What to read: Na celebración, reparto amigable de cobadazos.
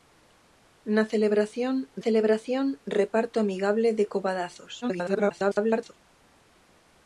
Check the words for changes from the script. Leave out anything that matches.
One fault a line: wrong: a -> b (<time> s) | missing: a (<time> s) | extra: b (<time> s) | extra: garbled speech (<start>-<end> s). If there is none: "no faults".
extra: celebración (2.0 s)
extra: garbled speech (4.8-5.9 s)